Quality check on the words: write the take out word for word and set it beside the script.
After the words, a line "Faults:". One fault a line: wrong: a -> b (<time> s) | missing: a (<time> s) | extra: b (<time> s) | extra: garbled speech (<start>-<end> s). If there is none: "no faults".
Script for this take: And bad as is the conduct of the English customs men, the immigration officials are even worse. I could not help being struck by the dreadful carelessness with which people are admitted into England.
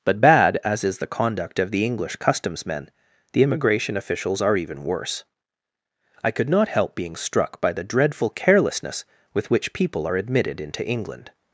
But bad as is the conduct of the English customs men, the immigration officials are even worse. I could not help being struck by the dreadful carelessness with which people are admitted into England.
Faults:
wrong: And -> But (0.0 s)